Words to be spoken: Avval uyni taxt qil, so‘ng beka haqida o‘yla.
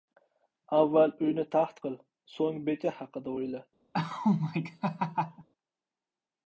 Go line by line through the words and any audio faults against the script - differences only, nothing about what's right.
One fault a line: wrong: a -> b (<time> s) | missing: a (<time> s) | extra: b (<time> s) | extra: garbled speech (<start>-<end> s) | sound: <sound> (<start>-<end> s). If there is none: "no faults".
sound: laugh (3.9-5.5 s)